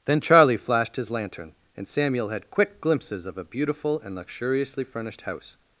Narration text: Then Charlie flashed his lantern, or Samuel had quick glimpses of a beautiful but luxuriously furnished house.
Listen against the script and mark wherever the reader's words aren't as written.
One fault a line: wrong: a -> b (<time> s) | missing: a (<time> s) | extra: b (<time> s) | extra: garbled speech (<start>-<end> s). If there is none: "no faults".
wrong: or -> and (1.8 s)
wrong: but -> and (4.0 s)